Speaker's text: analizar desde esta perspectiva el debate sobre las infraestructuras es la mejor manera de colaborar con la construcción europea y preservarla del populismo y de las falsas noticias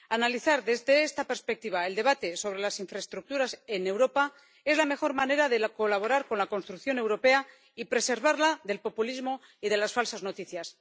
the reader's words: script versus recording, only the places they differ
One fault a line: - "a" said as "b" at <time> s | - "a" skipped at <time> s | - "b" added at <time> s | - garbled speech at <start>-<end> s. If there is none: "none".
- "en europa" added at 3.7 s